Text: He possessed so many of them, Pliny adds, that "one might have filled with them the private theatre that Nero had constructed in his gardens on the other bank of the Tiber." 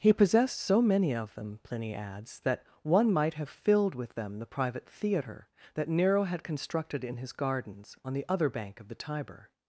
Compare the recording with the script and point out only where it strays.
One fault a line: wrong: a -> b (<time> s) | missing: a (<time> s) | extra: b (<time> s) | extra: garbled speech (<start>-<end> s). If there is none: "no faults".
no faults